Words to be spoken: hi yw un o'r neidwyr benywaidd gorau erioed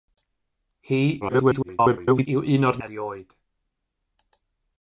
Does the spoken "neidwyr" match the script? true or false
false